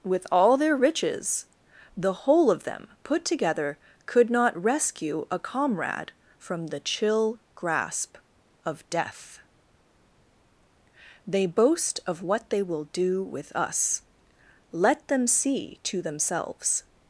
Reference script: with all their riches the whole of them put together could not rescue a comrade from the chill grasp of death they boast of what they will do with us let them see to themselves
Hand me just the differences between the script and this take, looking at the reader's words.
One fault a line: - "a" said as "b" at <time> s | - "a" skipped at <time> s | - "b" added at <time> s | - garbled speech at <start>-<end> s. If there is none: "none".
none